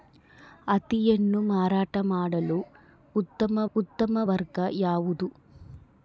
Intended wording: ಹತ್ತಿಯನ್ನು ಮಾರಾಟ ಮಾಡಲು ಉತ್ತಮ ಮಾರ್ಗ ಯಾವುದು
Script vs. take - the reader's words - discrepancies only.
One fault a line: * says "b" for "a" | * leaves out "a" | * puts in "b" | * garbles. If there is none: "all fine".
* puts in "ಉತ್ತಮ"